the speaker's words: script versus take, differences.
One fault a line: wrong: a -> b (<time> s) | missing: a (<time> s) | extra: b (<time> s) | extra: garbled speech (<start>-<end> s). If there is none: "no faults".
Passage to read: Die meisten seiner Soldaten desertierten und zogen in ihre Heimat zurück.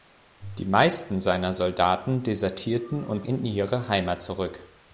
missing: zogen (3.3 s)